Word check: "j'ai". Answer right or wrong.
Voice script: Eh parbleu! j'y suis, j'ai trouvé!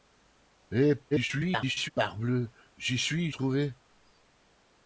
wrong